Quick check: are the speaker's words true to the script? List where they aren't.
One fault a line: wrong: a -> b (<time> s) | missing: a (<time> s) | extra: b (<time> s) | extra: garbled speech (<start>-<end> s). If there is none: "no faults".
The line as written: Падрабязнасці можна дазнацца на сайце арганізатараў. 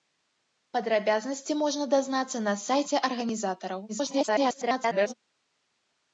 extra: garbled speech (3.9-5.1 s)